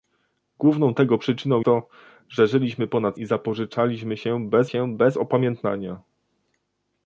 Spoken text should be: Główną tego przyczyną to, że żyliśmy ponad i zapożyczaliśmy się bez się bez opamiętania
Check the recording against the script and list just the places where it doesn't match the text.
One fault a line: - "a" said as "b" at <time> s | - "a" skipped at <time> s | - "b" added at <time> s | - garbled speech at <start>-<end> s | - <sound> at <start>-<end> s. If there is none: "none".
none